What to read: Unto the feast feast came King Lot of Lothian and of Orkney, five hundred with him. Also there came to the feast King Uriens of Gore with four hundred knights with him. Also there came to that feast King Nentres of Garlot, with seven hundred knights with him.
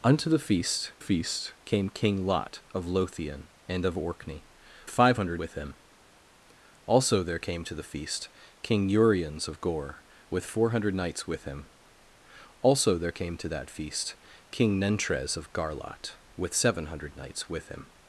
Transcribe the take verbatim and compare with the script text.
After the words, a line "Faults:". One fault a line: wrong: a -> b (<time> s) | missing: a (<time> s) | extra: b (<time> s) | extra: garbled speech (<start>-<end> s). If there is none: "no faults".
Unto the feast feast came King Lot of Lothian and of Orkney, five hundred with him. Also there came to the feast King Uriens of Gore with four hundred knights with him. Also there came to that feast King Nentres of Garlot, with seven hundred knights with him.
Faults:
no faults